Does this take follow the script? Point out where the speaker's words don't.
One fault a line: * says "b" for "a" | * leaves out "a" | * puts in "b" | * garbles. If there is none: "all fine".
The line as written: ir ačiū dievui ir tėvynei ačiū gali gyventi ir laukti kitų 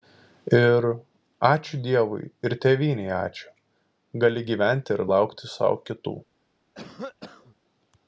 * puts in "sau"